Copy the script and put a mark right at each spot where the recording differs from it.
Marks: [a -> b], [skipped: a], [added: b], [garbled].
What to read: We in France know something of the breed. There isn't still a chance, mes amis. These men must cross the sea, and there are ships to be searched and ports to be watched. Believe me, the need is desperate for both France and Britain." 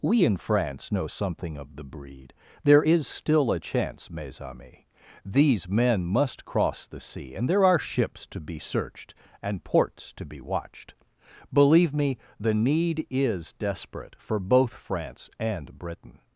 We in France know something of the breed. There [isn't -> is] still a chance, mes amis. These men must cross the sea, and there are ships to be searched and ports to be watched. Believe me, the need is desperate for both France and Britain."